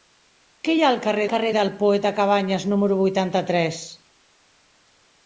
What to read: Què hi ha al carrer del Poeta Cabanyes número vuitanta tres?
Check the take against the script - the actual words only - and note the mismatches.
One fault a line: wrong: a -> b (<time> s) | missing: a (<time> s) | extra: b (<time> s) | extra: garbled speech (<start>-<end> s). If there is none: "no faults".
extra: carrer (1.3 s)